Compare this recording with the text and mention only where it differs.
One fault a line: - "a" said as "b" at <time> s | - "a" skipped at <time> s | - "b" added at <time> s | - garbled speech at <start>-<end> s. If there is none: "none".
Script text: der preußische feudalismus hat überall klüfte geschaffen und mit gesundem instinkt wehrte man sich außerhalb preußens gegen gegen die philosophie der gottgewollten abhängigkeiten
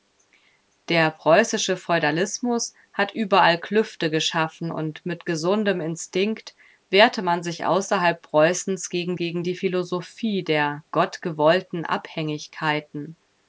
none